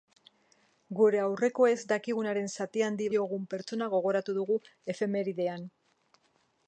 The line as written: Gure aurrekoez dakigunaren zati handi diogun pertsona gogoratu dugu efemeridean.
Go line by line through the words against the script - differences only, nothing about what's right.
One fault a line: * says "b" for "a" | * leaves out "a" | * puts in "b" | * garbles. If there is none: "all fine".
all fine